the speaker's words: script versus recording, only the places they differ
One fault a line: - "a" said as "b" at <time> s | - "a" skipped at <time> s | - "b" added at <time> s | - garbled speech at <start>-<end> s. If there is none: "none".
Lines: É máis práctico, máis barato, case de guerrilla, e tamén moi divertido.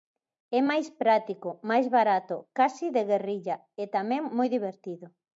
none